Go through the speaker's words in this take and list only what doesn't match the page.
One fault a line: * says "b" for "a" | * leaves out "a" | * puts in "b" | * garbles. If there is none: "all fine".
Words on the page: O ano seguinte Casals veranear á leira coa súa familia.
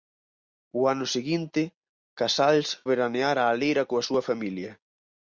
all fine